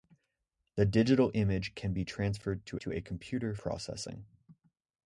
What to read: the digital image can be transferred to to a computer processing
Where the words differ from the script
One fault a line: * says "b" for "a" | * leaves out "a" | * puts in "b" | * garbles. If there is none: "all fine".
all fine